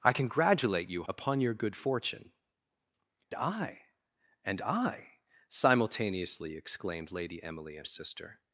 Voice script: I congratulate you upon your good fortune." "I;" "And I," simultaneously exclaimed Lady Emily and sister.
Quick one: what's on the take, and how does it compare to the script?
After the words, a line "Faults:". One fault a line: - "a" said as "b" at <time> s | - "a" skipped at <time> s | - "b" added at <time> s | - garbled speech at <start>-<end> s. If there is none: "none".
I congratulate you upon your good fortune." "I;" "And I," simultaneously exclaimed Lady Emily and sister.
Faults:
none